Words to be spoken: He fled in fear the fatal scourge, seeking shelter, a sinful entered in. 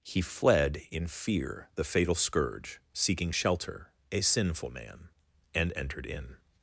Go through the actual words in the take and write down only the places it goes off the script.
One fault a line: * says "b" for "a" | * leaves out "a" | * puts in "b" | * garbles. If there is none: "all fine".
* puts in "man and"